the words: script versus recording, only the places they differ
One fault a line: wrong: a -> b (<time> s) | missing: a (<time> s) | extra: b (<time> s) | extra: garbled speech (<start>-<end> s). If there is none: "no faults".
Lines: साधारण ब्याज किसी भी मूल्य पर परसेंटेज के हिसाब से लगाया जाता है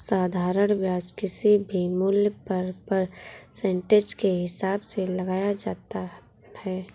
no faults